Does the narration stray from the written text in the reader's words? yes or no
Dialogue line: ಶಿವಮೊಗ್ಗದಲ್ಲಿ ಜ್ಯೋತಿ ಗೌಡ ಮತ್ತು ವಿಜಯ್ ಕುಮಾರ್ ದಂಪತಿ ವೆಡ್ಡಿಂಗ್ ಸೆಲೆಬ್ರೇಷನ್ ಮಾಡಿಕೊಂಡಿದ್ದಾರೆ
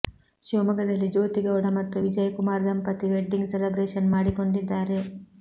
no